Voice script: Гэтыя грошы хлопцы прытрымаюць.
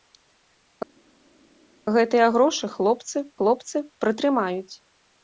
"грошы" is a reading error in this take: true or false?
false